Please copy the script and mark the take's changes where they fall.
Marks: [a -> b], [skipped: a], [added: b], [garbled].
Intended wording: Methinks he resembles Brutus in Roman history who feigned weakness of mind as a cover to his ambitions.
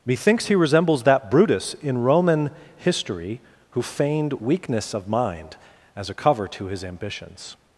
Methinks he resembles [added: that] Brutus in Roman history who feigned weakness of mind as a cover to his ambitions.